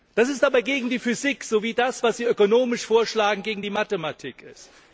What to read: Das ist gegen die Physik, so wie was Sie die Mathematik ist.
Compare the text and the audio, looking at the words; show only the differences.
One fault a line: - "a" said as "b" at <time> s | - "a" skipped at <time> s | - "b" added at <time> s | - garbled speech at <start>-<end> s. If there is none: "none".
- "aber" added at 0.4 s
- "das" added at 1.7 s
- "ökonomisch vorschlagen gegen" added at 2.2 s